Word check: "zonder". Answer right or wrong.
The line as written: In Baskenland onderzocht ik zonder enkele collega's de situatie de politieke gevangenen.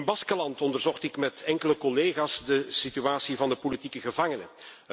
wrong